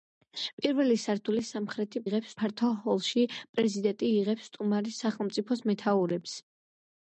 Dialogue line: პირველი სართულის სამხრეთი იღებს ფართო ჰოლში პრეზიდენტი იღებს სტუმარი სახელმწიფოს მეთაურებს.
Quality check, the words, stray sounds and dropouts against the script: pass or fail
pass